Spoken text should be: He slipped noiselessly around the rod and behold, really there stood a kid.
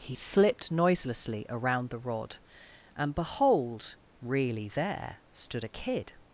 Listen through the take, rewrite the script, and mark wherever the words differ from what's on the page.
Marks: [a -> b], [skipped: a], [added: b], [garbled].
He slipped noiselessly around the rod and behold, really there stood a kid.